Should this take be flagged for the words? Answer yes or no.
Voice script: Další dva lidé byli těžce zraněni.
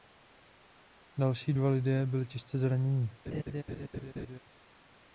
no